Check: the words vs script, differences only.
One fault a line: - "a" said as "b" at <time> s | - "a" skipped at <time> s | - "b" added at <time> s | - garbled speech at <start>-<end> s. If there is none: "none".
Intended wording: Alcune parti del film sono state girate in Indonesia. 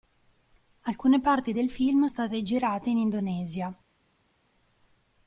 - "sono" skipped at 2.1 s